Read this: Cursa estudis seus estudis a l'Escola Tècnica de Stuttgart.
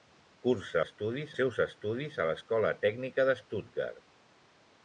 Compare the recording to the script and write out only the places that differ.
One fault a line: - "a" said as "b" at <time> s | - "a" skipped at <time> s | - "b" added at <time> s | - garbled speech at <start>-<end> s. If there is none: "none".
none